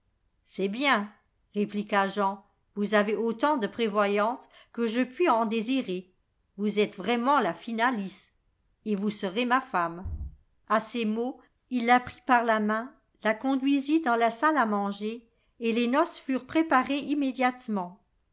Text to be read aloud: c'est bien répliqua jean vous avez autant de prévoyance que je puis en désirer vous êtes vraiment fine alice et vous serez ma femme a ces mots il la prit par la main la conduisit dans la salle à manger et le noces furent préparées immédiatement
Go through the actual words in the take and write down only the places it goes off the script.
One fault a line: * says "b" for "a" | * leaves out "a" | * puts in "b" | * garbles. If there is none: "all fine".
* puts in "la"
* says "les" for "le"